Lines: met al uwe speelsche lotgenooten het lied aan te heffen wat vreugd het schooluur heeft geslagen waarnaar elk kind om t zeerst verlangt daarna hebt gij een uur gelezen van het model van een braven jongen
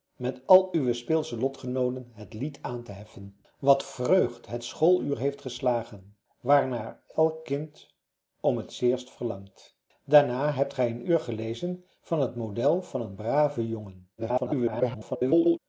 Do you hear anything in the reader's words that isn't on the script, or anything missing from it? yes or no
yes